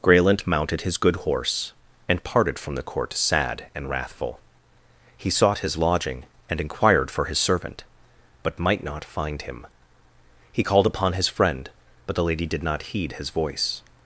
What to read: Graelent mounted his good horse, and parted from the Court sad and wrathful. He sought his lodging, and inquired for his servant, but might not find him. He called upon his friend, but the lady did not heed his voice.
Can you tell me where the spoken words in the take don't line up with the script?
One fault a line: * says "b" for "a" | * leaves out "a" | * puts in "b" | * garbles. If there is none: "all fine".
all fine